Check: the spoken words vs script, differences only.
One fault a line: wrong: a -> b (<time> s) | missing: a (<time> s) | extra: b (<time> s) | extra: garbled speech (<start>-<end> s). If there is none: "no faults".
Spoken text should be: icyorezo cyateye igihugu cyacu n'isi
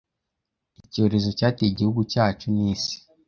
no faults